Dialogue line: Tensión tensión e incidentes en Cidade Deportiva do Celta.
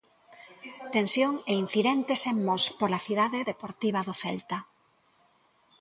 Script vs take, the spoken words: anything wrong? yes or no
yes